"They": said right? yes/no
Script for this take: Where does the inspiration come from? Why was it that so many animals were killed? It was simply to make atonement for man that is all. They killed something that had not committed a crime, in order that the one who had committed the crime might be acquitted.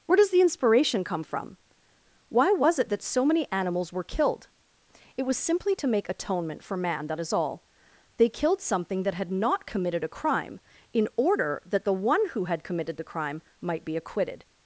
yes